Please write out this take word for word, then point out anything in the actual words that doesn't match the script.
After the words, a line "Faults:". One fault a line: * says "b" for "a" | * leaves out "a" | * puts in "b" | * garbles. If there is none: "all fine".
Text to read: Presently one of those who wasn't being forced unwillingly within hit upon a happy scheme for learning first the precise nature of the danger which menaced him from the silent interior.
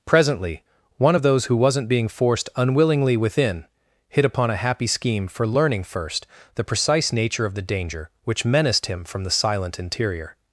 Presently one of those who wasn't being forced unwillingly within hit upon a happy scheme for learning first the precise nature of the danger which menaced him from the silent interior.
Faults:
all fine